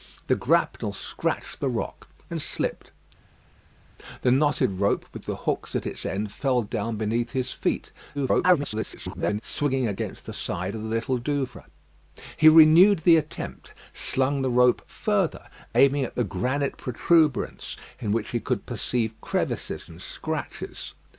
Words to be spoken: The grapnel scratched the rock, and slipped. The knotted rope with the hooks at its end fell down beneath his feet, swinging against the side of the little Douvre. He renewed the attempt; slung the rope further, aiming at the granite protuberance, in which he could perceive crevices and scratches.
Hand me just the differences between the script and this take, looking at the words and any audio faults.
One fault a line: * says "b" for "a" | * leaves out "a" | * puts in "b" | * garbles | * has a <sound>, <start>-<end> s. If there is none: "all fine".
* garbles